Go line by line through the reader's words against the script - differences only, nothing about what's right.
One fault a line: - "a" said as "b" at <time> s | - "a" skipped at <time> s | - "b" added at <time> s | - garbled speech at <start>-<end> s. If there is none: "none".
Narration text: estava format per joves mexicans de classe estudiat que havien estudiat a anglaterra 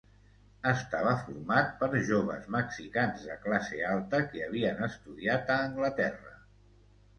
- "estudiat" said as "alta" at 3.9 s